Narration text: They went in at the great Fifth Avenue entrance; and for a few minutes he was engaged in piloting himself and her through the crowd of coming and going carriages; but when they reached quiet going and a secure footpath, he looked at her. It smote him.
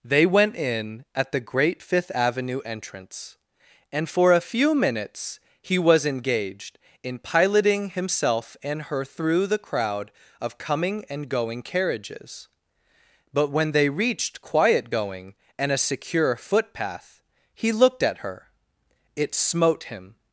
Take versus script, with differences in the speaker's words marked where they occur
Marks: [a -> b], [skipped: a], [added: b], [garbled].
They went in at the great Fifth Avenue entrance; and for a few minutes he was engaged in piloting himself and her through the crowd of coming and going carriages; but when they reached quiet going and a secure footpath, he looked at her. It smote him.